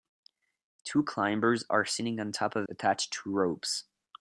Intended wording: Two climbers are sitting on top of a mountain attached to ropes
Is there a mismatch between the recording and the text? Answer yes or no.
yes